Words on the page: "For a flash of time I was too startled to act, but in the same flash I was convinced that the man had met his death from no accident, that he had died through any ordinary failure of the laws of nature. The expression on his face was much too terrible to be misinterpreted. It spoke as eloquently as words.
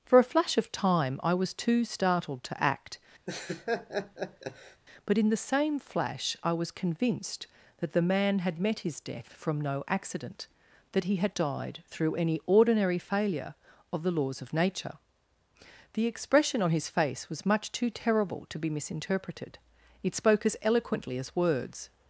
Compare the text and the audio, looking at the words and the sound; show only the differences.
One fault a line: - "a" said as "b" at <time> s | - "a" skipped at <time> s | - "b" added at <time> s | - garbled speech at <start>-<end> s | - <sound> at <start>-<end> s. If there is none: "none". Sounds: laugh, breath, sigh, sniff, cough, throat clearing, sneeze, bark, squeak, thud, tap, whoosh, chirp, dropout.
- laugh at 3.3-4.8 s